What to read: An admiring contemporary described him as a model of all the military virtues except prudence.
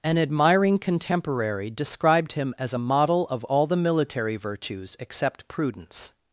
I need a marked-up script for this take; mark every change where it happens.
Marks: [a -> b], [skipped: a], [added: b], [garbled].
An admiring contemporary described him as a model of all the military virtues except prudence.